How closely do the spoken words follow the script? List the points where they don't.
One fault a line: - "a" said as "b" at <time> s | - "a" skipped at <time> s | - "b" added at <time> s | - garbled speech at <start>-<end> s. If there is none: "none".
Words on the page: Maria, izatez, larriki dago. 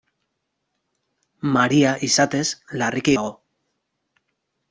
none